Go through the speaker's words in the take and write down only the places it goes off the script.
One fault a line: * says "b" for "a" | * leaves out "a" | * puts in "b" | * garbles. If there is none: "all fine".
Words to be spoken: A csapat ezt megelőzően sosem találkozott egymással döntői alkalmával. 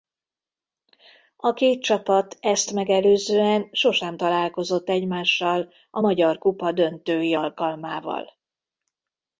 * puts in "két"
* puts in "a magyar kupa"